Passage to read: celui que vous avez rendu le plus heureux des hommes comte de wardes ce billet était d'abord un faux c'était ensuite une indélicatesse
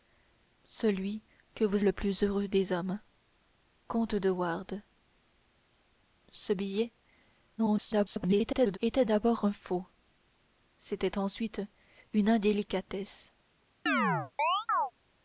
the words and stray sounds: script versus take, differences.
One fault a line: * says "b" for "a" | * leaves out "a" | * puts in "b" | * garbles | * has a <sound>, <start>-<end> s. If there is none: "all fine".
* leaves out "avez rendu"
* garbles
* has a chirp, 13.9-14.9 s